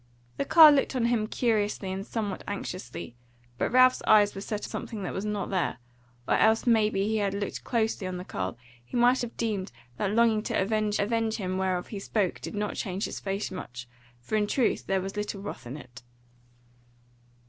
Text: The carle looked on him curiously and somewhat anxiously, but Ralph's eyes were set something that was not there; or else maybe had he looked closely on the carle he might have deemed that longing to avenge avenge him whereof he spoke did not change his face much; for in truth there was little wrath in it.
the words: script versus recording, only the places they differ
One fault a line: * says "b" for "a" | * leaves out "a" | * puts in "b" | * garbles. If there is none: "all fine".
all fine